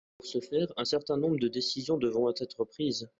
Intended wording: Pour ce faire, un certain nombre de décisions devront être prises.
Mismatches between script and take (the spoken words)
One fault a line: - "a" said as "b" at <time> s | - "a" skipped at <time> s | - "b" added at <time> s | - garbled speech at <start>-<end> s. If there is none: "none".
none